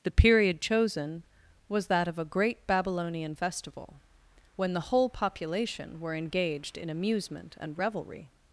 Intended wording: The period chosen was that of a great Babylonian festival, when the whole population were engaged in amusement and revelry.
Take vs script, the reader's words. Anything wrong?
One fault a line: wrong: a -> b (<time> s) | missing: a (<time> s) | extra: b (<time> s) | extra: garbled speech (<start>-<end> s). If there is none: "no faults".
no faults